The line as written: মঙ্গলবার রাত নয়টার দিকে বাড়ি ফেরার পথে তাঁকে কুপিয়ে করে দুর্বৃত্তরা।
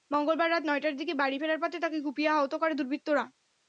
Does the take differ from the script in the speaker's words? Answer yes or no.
yes